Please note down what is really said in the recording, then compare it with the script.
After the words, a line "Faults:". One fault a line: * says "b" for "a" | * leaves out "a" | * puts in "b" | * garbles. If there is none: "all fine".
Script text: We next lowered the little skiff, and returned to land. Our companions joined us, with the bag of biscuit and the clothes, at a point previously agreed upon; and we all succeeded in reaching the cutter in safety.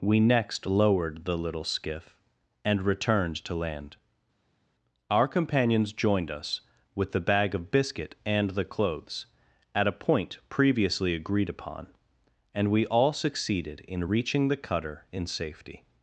We next lowered the little skiff, and returned to land. Our companions joined us, with the bag of biscuit and the clothes, at a point previously agreed upon; and we all succeeded in reaching the cutter in safety.
Faults:
all fine